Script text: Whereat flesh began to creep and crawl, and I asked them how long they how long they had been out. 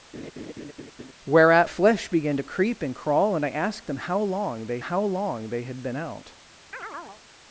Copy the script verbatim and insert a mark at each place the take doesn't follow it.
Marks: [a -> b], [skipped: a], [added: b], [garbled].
Whereat flesh began to creep and crawl, and I asked them how long they how long they had been out.